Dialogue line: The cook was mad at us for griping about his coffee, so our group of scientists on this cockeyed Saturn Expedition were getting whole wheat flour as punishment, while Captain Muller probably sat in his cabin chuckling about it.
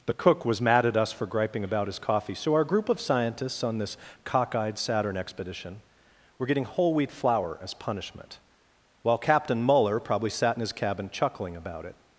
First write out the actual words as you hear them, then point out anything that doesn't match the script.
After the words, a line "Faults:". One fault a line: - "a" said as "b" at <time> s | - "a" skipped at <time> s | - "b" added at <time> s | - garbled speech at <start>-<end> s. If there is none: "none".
The cook was mad at us for griping about his coffee, so our group of scientists on this cockeyed Saturn Expedition were getting whole wheat flour as punishment, while Captain Muller probably sat in his cabin chuckling about it.
Faults:
none